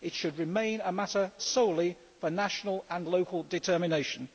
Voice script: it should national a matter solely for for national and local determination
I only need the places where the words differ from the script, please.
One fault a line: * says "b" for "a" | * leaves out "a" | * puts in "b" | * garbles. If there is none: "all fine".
* says "remain" for "national"
* leaves out "for"